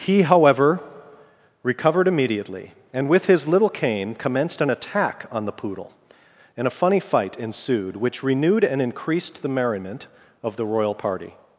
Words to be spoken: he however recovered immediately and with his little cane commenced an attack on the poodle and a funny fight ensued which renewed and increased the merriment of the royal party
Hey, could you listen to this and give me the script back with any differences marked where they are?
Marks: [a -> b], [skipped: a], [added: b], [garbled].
he however recovered immediately and with his little cane commenced an attack on the poodle and a funny fight ensued which renewed and increased the merriment of the royal party